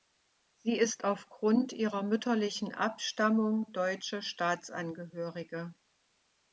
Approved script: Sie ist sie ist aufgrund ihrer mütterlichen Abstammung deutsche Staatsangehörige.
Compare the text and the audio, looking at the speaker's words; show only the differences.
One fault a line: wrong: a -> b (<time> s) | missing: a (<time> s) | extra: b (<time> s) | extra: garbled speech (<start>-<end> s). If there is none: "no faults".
missing: sie ist (1.1 s)